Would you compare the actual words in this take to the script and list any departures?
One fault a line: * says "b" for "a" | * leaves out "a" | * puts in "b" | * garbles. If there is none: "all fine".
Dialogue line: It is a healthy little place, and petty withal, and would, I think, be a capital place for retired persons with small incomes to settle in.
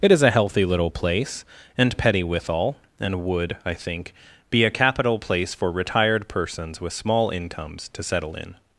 all fine